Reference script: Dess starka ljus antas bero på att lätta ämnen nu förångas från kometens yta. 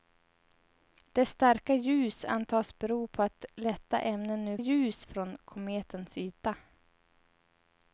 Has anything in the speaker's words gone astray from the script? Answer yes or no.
yes